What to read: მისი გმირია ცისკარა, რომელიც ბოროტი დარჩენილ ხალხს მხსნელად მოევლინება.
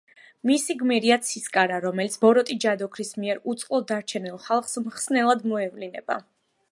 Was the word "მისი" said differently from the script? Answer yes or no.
no